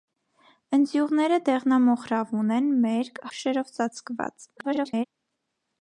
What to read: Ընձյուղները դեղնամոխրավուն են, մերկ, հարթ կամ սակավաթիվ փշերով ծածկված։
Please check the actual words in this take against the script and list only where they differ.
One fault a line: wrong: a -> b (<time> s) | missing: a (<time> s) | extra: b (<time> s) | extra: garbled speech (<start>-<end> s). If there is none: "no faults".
missing: հարթ կամ սակավաթիվ (3.2 s)
extra: garbled speech (4.6-5.1 s)